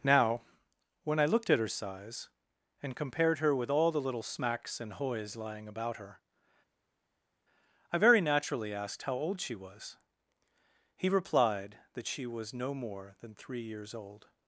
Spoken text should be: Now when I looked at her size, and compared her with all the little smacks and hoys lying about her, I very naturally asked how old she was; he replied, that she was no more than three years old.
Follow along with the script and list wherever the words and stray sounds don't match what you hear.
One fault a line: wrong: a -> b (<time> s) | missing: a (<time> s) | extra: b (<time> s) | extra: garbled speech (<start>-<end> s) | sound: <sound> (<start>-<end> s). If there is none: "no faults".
no faults